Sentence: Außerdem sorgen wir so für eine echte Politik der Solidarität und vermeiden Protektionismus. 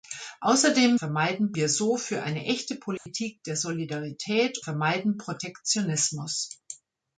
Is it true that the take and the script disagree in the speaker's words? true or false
true